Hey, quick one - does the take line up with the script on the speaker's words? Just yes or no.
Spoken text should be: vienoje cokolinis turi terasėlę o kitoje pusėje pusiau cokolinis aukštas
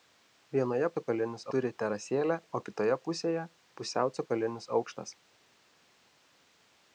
yes